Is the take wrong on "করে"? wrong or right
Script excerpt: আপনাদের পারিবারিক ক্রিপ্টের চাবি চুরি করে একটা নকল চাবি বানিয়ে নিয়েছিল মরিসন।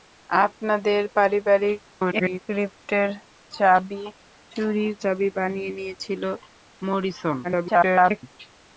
wrong